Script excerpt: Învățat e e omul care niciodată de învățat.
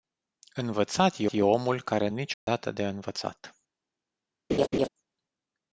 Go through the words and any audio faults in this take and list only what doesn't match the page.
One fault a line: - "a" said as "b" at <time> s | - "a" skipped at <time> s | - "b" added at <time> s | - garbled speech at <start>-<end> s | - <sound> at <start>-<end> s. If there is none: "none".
- dropout at 2.3-2.5 s
- laugh at 4.5-4.9 s